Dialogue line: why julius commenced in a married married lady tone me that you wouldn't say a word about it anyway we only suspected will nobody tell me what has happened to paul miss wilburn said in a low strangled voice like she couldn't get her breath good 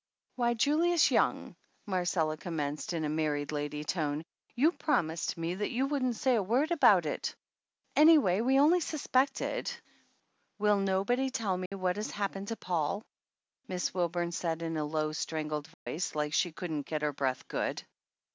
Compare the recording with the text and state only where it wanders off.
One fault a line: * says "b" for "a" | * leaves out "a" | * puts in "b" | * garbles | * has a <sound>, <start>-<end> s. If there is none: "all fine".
* puts in "young marcella"
* leaves out "married"
* puts in "you promised"
* has a dropout, 11.7-11.7 s
* has a dropout, 15.7-15.9 s